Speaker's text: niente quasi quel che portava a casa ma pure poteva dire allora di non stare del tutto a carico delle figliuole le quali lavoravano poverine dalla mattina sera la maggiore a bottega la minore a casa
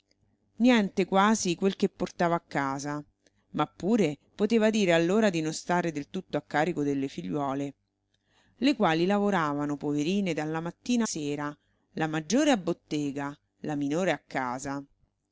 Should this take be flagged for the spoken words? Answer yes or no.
no